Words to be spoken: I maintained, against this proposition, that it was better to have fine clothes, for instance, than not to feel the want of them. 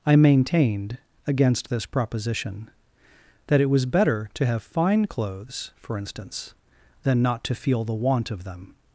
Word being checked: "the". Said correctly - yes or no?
yes